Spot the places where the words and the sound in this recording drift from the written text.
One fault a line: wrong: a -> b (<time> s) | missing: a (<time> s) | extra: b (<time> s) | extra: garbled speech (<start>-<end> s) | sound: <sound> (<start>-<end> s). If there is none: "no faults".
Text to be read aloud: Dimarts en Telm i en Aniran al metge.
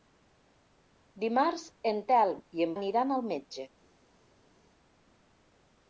no faults